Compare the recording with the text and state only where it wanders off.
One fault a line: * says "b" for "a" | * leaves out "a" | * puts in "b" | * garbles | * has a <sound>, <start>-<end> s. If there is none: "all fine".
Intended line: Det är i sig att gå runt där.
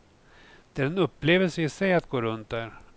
* puts in "en upplevelse"